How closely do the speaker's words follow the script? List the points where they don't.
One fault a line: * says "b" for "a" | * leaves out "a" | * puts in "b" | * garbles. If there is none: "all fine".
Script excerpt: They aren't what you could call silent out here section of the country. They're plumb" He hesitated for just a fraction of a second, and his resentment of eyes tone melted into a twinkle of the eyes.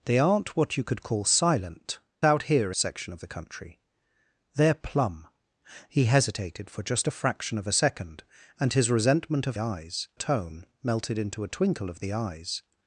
all fine